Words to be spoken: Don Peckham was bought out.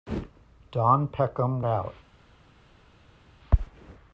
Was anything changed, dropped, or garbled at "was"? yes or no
yes